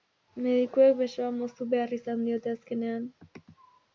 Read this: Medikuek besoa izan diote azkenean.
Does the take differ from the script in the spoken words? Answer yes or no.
yes